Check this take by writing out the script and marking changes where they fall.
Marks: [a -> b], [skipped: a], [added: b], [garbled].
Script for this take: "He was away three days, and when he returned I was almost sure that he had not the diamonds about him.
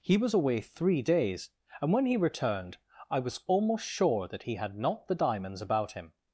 "He was away three days, and when he returned I was almost sure that he had not the diamonds about him.